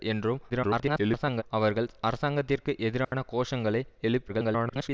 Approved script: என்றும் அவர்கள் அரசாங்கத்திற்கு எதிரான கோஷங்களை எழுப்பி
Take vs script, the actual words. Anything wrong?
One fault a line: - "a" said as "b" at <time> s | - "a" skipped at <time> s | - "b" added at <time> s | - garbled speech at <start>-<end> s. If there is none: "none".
- garbled speech at 0.5-1.4 s
- garbled speech at 4.3-4.9 s